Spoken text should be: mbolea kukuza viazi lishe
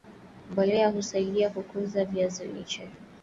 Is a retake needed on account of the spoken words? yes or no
yes